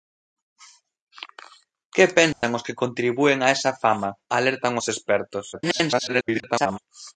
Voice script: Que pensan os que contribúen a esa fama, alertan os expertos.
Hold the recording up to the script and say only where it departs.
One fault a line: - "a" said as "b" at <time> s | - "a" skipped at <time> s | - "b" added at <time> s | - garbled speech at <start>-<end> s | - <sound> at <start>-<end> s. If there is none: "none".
- dropout at 2.3-2.4 s
- garbled speech at 5.5-6.8 s